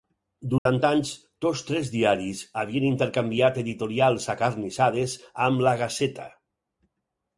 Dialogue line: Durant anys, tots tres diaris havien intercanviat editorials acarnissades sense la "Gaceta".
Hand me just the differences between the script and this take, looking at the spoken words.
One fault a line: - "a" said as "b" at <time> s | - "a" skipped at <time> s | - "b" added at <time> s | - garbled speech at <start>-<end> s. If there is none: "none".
- "sense" said as "amb" at 5.5 s